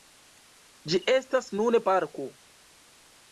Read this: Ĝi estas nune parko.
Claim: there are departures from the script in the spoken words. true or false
false